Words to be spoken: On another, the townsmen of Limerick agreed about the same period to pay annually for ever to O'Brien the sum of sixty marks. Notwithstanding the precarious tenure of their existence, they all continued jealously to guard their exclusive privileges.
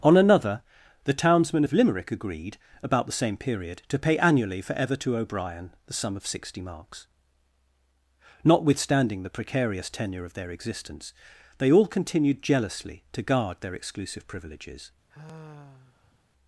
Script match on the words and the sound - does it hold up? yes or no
no